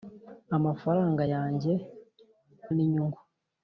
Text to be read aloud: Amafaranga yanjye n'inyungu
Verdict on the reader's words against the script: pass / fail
pass